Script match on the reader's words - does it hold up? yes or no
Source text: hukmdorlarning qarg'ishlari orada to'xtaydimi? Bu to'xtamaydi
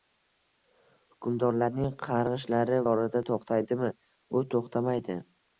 yes